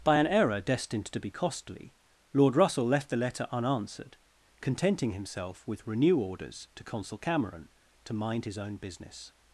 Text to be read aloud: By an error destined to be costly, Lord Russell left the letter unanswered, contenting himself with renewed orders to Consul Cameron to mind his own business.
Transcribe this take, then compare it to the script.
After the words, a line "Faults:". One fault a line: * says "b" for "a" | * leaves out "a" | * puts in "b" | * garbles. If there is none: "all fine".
By an error destined to be costly, Lord Russell left the letter unanswered, contenting himself with renew orders to Consul Cameron to mind his own business.
Faults:
* says "renew" for "renewed"